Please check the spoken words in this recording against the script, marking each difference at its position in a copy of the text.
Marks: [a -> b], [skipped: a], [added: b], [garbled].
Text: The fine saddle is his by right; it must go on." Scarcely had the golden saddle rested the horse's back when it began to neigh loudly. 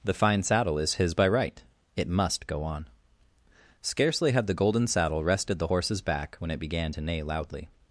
The fine saddle is his by right; it must go on." Scarcely had the golden saddle rested the horse's back when it began to neigh loudly.